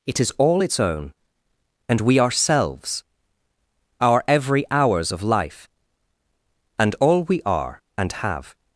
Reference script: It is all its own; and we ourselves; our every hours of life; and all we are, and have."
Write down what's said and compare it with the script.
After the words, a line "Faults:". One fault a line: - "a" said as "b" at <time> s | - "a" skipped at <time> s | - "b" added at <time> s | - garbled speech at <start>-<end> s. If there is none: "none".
It is all its own; and we ourselves; our every hours of life; and all we are, and have."
Faults:
none